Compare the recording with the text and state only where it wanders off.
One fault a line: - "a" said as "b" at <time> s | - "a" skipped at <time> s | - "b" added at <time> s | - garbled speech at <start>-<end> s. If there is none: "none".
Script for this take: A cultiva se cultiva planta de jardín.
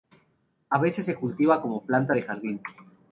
- "cultiva" said as "veces" at 0.8 s
- "como" added at 1.6 s